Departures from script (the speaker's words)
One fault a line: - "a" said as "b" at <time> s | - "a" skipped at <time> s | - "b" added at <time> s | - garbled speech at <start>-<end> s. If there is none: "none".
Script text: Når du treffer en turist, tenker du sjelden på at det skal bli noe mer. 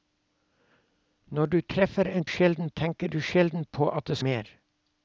- "turist" said as "sjelden" at 2.3 s
- "skal bli noe" skipped at 4.2 s